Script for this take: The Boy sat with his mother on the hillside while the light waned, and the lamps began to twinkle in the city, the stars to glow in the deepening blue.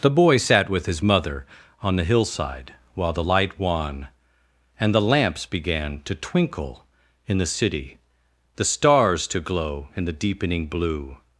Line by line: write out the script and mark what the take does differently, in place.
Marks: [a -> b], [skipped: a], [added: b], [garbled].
The Boy sat with his mother on the hillside while the light [waned, -> wan] and the lamps began to twinkle in the city, the stars to glow in the deepening blue.